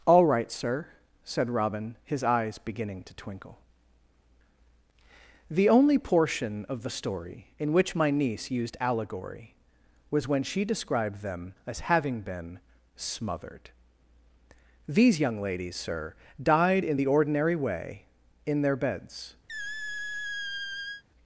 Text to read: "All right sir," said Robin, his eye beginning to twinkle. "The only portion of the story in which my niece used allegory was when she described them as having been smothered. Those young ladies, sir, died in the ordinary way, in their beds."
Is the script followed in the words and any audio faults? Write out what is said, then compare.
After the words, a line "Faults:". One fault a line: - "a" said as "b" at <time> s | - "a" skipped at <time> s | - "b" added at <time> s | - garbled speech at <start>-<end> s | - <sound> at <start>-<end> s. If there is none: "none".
"All right sir," said Robin, his eyes beginning to twinkle. "The only portion of the story in which my niece used allegory was when she described them as having been smothered. These young ladies, sir, died in the ordinary way, in their beds."
Faults:
- "eye" said as "eyes" at 2.2 s
- "Those" said as "These" at 14.9 s
- squeak at 19.5-21.0 s